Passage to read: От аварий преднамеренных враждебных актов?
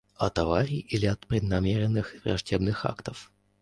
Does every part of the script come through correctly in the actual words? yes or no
no